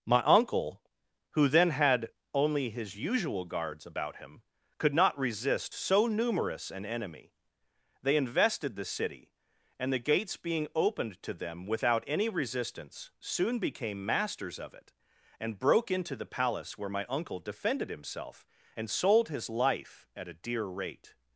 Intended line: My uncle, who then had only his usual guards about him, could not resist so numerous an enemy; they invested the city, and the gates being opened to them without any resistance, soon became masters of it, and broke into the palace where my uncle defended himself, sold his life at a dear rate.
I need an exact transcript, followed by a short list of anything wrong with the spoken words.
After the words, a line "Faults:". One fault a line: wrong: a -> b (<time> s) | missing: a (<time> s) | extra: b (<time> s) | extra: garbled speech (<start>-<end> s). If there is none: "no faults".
My uncle, who then had only his usual guards about him, could not resist so numerous an enemy; they invested the city, and the gates being opened to them without any resistance, soon became masters of it, and broke into the palace where my uncle defended himself, and sold his life at a dear rate.
Faults:
extra: and (18.8 s)